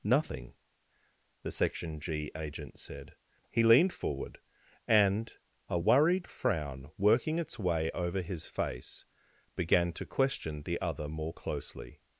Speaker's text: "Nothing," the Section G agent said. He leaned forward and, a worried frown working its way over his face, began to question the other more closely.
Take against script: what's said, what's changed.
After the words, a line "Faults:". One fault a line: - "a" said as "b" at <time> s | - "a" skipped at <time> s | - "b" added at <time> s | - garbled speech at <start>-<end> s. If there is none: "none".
"Nothing," the Section G agent said. He leaned forward and, a worried frown working its way over his face, began to question the other more closely.
Faults:
none